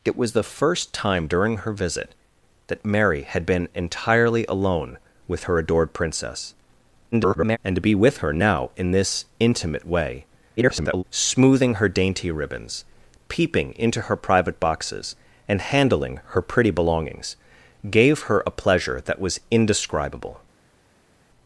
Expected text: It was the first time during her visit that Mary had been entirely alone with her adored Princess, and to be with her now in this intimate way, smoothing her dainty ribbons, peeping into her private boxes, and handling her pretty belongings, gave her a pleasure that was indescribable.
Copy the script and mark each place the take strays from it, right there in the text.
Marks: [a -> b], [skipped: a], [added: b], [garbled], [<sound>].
It was the first time during her visit that Mary had been entirely alone with her adored Princess, [garbled] and to be with her now in this intimate way, [garbled] smoothing her dainty ribbons, peeping into her private boxes, and handling her pretty belongings, gave her a pleasure that was indescribable.